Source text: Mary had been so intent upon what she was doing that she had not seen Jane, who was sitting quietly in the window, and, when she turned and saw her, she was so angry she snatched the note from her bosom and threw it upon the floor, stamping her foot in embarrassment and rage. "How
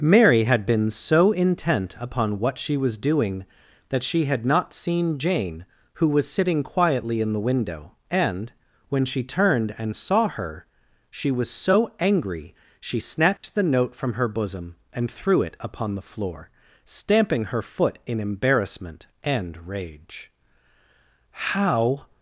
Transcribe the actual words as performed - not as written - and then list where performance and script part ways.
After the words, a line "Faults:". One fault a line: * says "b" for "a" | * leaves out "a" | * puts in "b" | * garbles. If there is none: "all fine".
Mary had been so intent upon what she was doing that she had not seen Jane, who was sitting quietly in the window, and, when she turned and saw her, she was so angry she snatched the note from her bosom and threw it upon the floor, stamping her foot in embarrassment and rage. "How
Faults:
all fine